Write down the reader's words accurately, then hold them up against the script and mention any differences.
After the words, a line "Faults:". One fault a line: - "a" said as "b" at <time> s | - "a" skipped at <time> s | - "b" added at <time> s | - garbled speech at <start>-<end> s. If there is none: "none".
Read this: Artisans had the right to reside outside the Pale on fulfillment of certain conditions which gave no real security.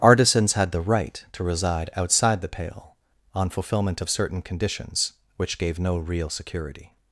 Artisans had the right to reside outside the Pale on fulfillment of certain conditions which gave no real security.
Faults:
none